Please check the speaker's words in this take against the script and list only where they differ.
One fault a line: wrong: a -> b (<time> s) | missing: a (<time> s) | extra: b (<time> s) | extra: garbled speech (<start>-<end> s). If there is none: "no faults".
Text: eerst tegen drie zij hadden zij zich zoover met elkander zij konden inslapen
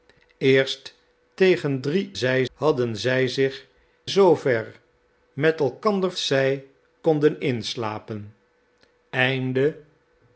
no faults